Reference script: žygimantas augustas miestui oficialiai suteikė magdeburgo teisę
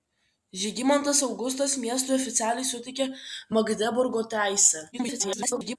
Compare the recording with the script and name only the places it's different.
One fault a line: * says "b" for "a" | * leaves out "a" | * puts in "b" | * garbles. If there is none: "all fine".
* garbles